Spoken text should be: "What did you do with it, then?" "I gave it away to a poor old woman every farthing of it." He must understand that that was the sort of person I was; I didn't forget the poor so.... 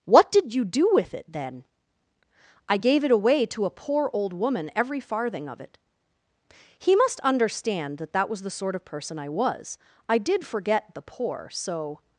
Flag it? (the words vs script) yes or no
yes